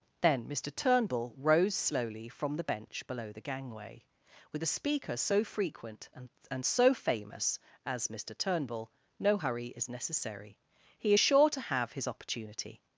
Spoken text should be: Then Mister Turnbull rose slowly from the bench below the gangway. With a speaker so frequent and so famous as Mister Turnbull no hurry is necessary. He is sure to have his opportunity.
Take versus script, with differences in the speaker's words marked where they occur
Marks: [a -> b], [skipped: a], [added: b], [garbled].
Then Mister Turnbull rose slowly from the bench below the gangway. With a speaker so frequent and [added: and] so famous as Mister Turnbull no hurry is necessary. He is sure to have his opportunity.